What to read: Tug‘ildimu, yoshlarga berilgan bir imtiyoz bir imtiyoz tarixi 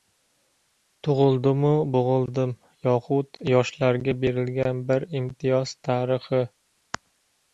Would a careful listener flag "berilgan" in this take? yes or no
no